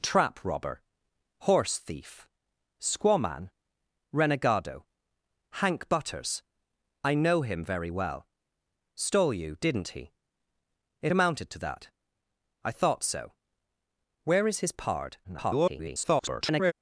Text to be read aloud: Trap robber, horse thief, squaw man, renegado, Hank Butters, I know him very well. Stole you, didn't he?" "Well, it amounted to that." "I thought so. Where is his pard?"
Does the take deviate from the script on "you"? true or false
false